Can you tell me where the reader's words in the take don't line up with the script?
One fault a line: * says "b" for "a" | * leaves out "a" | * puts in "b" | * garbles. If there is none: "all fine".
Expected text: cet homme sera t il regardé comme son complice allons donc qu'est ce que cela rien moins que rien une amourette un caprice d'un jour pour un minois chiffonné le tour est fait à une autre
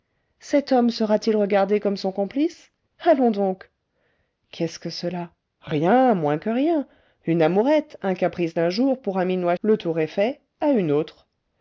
* leaves out "chiffonné"